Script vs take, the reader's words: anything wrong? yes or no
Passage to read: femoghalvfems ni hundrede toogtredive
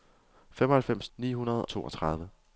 no